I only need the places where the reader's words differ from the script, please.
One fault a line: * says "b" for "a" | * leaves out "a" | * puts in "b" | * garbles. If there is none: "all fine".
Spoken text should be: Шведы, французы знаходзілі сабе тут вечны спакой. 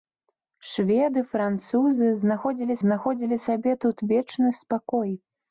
* puts in "знаходзілі"